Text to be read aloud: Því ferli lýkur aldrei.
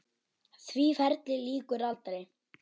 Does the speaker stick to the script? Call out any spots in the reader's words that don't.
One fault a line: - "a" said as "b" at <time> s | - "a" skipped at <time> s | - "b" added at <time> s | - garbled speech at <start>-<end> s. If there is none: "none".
none